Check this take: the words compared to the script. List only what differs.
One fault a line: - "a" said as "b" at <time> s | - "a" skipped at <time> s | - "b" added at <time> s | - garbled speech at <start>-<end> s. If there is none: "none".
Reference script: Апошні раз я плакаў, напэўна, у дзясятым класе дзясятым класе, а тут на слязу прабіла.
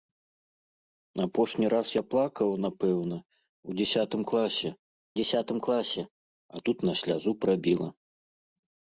none